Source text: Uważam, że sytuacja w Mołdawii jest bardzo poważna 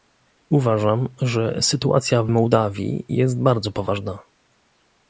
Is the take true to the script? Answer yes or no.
yes